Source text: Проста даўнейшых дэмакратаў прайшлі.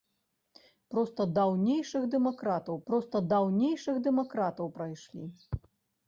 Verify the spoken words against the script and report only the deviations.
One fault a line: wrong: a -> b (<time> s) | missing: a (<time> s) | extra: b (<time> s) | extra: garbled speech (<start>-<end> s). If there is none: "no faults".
extra: проста даўнейшых дэмакратаў (2.9 s)